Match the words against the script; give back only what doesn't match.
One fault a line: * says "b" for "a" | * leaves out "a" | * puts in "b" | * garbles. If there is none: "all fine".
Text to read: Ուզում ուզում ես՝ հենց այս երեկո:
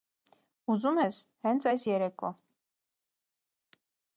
* leaves out "ուզում"